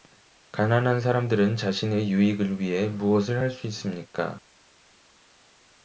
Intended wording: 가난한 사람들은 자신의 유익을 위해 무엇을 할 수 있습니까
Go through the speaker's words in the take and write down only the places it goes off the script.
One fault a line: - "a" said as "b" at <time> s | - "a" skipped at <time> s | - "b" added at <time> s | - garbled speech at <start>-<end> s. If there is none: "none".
none